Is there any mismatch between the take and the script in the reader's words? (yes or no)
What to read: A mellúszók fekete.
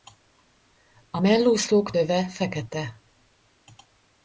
yes